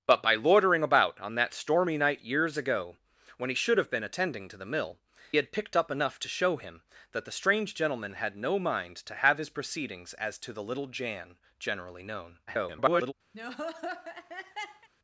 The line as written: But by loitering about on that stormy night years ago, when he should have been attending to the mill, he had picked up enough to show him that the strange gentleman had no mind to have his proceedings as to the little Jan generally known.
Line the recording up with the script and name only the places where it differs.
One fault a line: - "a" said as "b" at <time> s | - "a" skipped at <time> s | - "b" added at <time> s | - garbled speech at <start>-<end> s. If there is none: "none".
- "he" skipped at 5.0 s
- garbled speech at 12.5-13.1 s